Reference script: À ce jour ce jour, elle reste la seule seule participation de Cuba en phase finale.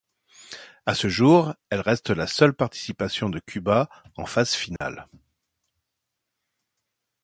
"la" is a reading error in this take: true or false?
false